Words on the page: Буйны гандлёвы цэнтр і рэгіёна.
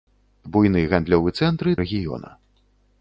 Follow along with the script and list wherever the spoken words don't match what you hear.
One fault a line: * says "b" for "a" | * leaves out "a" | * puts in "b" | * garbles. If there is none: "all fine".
all fine